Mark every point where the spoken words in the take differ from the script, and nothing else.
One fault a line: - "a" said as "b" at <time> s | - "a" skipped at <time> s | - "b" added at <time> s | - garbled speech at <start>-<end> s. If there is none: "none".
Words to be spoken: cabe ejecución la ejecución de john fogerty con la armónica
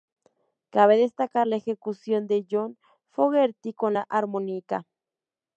- "ejecución" said as "destacar" at 1.0 s